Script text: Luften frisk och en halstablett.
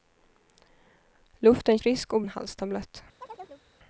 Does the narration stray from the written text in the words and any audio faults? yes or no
yes